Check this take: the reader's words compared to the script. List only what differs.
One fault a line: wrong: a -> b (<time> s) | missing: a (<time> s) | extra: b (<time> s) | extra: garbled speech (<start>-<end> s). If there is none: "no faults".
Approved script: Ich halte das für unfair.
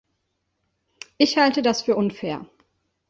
no faults